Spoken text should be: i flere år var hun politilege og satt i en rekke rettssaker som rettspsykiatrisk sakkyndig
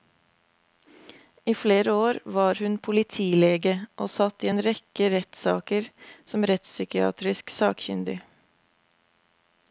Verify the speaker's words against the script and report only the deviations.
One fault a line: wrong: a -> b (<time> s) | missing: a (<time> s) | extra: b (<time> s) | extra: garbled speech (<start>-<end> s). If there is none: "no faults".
no faults